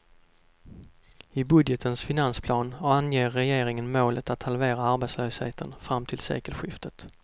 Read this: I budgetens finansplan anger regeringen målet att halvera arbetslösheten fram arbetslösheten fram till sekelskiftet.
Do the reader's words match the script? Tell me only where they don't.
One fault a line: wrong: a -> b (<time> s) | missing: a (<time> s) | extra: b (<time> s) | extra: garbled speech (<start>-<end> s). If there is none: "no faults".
missing: arbetslösheten fram (6.1 s)